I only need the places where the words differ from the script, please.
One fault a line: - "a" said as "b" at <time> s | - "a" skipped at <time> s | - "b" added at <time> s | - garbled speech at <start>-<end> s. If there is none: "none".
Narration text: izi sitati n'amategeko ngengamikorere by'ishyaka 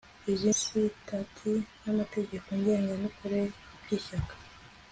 none